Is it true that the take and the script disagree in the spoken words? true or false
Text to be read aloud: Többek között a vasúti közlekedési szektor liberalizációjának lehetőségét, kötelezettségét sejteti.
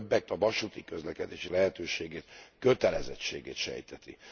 true